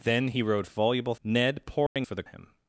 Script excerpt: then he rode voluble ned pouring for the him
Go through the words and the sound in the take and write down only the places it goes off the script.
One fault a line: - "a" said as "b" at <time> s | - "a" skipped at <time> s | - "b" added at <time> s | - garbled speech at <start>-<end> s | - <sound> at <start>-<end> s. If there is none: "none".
- dropout at 1.9-2.0 s